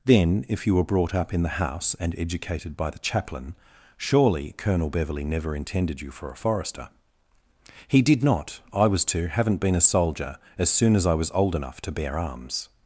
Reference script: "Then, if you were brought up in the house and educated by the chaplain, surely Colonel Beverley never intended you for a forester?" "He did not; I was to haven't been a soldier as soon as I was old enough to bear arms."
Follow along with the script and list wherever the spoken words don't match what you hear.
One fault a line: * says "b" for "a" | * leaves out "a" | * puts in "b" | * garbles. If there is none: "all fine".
all fine